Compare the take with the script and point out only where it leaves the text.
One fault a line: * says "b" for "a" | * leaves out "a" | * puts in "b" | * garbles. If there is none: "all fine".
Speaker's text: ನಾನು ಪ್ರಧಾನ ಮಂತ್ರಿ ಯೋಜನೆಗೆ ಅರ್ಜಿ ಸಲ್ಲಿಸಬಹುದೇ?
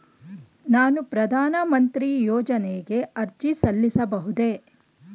all fine